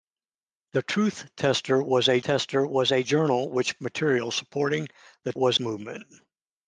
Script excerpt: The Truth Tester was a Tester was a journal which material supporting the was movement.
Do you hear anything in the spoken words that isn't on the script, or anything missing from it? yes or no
no